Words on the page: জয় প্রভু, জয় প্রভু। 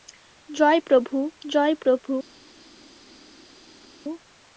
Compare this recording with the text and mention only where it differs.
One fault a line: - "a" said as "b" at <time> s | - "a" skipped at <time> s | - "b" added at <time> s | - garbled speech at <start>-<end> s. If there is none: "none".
none